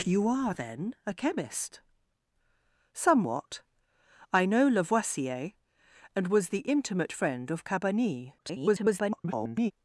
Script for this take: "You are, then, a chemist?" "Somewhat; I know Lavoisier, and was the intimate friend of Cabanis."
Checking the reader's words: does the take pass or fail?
fail